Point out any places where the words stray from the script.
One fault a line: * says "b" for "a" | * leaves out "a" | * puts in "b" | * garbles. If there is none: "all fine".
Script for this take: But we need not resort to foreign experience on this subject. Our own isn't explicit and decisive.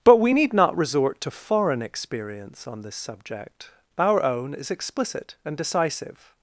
* says "is" for "isn't"